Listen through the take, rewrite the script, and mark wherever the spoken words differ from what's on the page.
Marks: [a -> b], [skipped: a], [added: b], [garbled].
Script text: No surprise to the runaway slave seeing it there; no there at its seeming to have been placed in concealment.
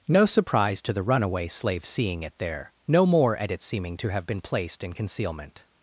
No surprise to the runaway slave seeing it there; no [there -> more] at its seeming to have been placed in concealment.